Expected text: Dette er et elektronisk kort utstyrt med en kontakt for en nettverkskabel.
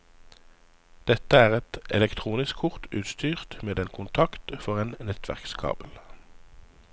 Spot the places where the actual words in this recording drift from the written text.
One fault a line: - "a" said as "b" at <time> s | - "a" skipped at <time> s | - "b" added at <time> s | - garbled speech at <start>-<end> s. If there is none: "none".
none